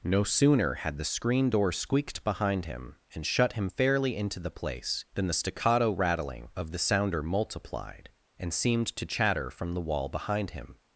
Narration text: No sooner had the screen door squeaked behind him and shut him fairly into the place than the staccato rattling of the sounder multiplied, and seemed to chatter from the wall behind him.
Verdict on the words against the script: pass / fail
pass